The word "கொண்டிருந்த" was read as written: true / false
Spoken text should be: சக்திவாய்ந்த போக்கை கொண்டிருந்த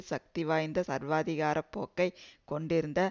true